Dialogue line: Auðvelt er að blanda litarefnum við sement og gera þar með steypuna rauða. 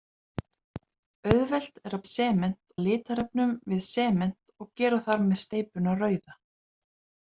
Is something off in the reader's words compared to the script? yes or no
yes